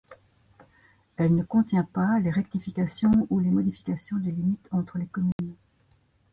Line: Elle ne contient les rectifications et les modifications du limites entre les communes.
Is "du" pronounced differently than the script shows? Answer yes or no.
yes